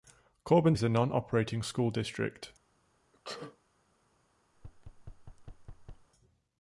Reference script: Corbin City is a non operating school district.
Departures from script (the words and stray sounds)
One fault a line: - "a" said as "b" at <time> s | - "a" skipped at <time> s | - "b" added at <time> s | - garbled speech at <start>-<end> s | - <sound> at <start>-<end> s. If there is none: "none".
- "City" skipped at 0.8 s
- sneeze at 3.1-3.6 s
- thud at 4.5-6.1 s